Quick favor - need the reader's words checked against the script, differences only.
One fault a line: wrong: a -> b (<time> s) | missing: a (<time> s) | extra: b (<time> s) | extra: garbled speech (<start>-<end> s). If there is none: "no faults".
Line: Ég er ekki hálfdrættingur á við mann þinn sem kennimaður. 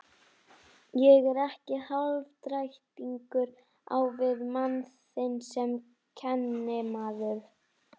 no faults